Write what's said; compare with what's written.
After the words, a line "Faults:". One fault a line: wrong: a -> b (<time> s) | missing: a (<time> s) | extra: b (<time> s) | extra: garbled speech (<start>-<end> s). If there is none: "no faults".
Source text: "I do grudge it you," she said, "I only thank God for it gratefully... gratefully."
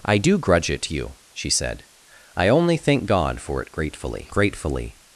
"I do grudge it you," she said, "I only thank God for it gratefully... gratefully."
Faults:
no faults